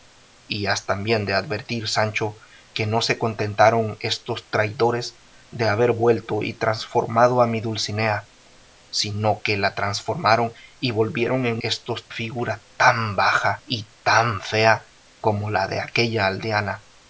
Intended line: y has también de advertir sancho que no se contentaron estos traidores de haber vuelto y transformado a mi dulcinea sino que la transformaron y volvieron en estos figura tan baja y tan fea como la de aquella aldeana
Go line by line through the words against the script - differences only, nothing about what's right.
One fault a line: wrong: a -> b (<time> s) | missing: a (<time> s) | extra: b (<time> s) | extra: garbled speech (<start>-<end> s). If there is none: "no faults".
no faults